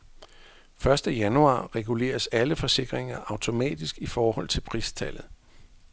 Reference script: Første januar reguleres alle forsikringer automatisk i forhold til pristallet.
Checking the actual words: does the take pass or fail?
pass